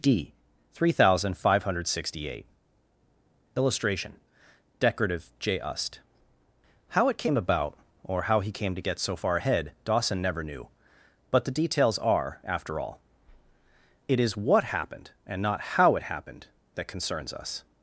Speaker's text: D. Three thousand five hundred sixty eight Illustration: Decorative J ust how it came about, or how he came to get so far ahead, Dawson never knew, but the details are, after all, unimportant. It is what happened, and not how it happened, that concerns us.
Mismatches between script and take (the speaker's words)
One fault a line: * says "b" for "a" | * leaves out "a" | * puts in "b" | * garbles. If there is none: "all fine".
* leaves out "unimportant"